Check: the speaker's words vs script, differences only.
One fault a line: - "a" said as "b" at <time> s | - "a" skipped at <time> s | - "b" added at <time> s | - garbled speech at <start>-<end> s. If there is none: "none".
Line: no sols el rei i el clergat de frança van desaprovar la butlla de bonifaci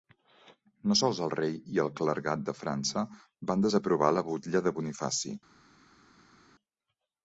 none